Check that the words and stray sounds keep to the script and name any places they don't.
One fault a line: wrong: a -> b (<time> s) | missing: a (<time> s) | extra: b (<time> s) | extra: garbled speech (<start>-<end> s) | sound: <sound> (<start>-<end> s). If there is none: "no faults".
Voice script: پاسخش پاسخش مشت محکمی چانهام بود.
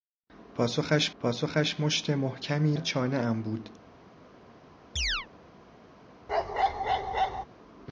sound: chirp (5.0-5.3 s)
sound: bark (6.3-7.5 s)